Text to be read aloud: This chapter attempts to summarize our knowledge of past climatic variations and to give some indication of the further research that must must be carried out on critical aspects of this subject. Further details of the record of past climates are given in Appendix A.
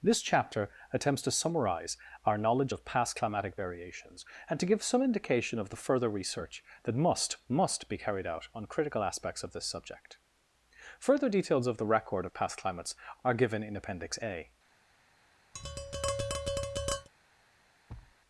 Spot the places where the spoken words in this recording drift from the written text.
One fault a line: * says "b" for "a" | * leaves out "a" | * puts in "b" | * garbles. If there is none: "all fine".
all fine